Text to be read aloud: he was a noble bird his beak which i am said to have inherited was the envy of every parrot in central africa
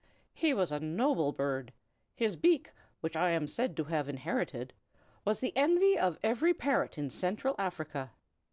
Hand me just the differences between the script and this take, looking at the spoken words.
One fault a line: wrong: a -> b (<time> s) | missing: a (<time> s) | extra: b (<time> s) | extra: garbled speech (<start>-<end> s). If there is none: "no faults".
no faults